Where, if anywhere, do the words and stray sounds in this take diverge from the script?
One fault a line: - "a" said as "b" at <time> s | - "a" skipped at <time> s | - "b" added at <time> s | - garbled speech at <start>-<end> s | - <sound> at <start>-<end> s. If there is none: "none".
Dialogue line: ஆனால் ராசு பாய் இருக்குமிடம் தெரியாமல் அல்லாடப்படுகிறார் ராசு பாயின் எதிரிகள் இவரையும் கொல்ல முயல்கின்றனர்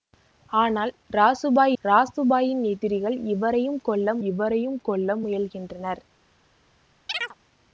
- "இருக்குமிடம் தெரியாமல் அல்லாடப்படுகிறார்" skipped at 1.7 s
- "இவரையும் கொல்ல" added at 4.3 s
- chirp at 7.1-7.3 s